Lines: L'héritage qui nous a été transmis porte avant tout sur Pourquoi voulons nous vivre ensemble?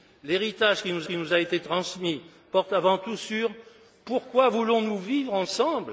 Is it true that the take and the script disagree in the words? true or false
true